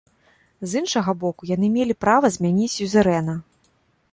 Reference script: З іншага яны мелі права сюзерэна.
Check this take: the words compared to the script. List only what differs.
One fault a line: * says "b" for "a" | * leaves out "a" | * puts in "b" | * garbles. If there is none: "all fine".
* puts in "боку"
* puts in "змяніць"